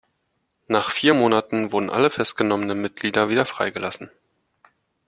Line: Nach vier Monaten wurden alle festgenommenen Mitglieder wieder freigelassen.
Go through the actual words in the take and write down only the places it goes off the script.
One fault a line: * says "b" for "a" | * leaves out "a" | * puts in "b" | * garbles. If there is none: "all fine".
all fine